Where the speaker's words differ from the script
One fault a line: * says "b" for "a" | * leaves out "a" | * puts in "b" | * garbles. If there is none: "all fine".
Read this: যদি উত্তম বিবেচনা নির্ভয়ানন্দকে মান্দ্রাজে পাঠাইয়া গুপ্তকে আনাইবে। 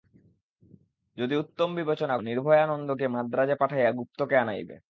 all fine